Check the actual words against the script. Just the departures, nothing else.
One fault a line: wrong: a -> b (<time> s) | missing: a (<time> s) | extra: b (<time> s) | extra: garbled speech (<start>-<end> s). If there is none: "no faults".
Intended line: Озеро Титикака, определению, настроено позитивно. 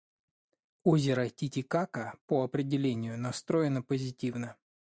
extra: по (2.2 s)